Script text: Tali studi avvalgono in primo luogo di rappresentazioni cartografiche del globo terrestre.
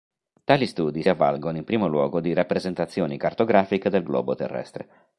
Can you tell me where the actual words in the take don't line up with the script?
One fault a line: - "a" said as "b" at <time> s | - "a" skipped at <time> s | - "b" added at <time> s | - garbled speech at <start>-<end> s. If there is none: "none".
none